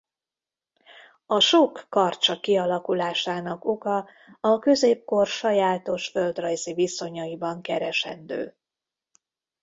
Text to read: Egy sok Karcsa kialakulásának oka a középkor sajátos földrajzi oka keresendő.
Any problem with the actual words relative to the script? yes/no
yes